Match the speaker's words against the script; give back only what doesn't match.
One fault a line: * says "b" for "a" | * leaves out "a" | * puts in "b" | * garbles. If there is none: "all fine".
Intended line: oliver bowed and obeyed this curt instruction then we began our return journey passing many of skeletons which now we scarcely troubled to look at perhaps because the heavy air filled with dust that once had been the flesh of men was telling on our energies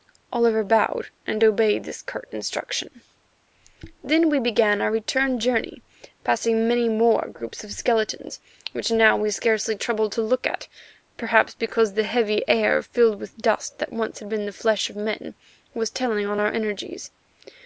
* puts in "more groups"